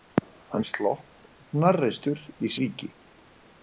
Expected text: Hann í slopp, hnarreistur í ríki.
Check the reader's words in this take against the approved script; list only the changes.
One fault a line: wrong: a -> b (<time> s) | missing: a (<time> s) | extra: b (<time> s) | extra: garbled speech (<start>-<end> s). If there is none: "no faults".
no faults